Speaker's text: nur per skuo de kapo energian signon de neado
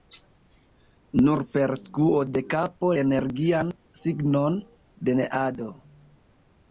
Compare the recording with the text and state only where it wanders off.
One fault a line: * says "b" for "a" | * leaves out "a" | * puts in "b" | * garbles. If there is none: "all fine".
all fine